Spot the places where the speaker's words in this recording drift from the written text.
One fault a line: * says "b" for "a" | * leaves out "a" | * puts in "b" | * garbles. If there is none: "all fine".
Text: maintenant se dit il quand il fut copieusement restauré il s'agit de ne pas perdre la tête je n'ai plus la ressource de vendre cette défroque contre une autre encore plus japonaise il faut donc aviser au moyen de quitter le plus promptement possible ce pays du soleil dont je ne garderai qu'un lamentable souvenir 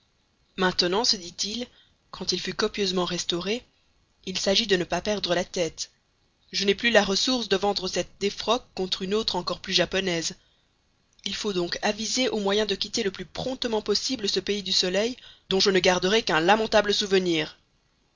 all fine